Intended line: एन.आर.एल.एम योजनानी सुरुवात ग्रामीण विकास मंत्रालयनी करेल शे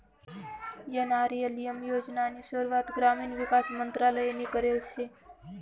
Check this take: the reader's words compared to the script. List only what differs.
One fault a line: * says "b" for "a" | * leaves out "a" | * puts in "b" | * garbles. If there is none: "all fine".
all fine